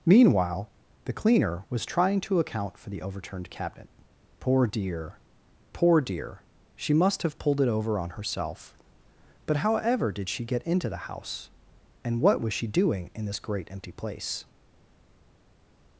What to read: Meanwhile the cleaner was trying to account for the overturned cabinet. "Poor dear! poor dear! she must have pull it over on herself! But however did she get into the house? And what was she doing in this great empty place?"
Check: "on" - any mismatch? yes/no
no